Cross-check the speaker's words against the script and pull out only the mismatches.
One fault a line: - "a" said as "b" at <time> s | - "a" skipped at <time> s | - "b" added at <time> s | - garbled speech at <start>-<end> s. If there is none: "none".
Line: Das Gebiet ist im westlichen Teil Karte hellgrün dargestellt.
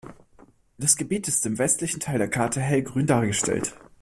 - "der" added at 2.2 s